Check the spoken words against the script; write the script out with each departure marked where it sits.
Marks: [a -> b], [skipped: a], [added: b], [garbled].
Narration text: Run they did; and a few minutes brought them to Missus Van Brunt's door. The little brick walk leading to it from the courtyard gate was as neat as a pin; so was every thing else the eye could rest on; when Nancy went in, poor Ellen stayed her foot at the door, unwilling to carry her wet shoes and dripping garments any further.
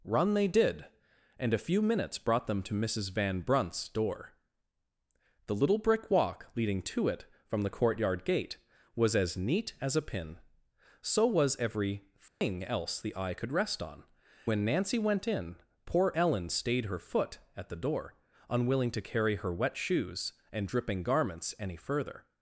Run they did; and a few minutes brought them to Missus Van Brunt's door. The little brick walk leading to it from the courtyard gate was as neat as a pin; so was every thing else the eye could rest on; when Nancy went in, poor Ellen stayed her foot at the door, unwilling to carry her wet shoes and dripping garments any further.